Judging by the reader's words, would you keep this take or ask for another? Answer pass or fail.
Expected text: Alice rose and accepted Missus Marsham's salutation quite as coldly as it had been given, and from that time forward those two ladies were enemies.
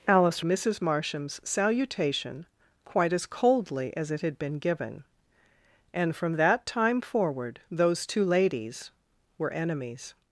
fail